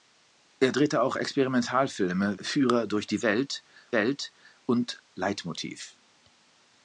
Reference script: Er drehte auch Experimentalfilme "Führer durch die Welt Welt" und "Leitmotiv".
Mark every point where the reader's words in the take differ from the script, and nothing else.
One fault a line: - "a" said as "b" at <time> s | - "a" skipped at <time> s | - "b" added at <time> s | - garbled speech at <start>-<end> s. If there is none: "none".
none